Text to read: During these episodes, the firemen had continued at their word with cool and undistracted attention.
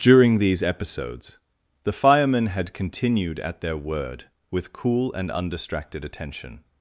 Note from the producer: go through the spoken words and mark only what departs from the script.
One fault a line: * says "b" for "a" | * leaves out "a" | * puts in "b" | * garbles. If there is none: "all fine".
all fine